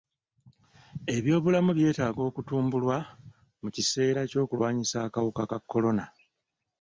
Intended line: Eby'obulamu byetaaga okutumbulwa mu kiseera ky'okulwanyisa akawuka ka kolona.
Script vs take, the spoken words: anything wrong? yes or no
no